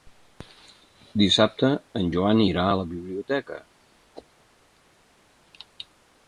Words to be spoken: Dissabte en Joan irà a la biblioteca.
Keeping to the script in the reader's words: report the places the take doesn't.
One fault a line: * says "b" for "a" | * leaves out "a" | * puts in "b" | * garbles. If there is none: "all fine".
all fine